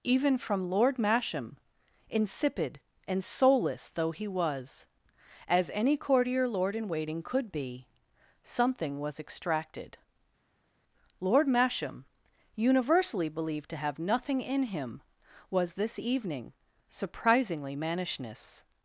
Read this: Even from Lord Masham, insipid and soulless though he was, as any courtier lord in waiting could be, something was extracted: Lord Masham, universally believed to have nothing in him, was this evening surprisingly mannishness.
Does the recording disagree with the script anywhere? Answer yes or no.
no